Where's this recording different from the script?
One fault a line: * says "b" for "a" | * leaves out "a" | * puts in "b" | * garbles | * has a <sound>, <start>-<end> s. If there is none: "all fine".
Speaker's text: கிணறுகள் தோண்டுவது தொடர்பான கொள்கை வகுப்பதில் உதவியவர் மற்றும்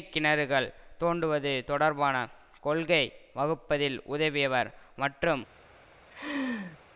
* has a laugh, 6.1-6.8 s